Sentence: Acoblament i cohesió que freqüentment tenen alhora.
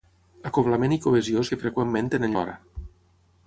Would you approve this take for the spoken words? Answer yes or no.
yes